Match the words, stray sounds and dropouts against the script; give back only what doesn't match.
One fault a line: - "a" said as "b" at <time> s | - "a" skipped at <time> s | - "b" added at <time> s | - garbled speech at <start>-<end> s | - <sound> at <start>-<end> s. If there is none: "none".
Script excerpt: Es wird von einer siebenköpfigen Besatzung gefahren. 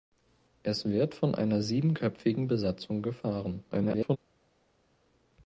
- garbled speech at 3.7-4.2 s